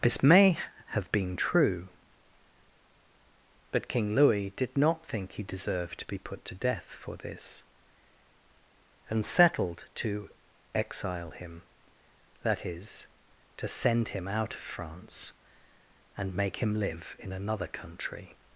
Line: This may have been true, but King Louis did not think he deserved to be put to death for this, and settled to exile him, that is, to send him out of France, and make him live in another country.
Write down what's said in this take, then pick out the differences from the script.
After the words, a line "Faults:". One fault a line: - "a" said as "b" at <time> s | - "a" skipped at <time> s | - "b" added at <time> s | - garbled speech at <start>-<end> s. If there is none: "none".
This may have been true, but King Louis did not think he deserved to be put to death for this, and settled to exile him, that is, to send him out of France, and make him live in another country.
Faults:
none